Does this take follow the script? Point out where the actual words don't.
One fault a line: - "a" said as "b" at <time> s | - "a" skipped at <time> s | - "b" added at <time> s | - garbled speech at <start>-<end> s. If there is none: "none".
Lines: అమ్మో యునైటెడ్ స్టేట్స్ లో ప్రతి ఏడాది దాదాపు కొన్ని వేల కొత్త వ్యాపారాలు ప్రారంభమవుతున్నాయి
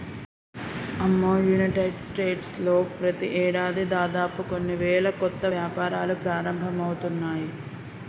none